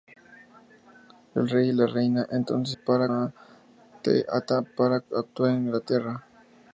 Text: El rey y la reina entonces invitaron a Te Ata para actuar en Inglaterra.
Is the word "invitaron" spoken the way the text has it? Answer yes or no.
no